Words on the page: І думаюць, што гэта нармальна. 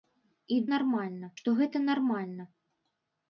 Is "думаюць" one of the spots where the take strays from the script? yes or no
yes